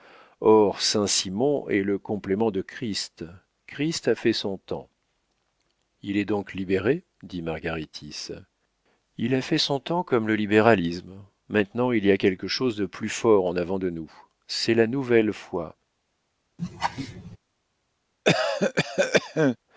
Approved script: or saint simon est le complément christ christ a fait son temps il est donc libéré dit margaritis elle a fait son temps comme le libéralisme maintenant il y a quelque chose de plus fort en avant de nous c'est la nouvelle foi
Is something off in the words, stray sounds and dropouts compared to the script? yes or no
yes